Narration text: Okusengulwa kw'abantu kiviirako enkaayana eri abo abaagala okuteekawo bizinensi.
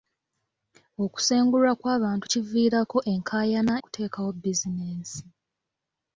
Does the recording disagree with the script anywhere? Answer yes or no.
yes